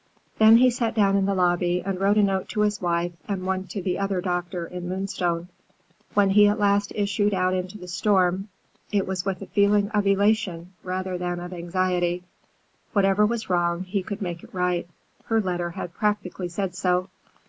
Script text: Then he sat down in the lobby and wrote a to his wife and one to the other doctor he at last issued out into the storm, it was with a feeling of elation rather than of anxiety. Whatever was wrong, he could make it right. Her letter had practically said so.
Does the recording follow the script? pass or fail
fail